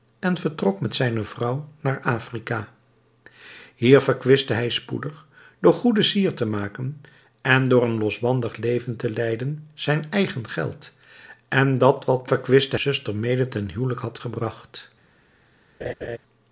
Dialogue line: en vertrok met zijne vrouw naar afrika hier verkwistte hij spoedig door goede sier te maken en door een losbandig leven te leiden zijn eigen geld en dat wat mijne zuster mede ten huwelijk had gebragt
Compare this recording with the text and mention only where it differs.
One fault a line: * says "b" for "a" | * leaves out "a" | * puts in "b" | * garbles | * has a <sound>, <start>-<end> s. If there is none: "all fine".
* says "verkwistte" for "mijne"
* has a laugh, 15.8-16.2 s